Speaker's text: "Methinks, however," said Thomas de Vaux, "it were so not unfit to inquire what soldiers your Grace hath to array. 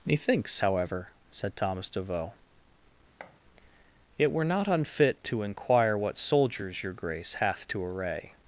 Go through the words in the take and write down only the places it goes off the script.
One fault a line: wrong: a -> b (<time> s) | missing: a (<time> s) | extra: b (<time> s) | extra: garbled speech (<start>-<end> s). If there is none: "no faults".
missing: so (4.4 s)